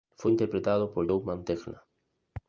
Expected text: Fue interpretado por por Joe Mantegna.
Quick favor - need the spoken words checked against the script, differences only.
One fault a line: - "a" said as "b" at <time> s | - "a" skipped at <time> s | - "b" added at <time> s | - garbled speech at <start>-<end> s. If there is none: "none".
- "por" skipped at 1.1 s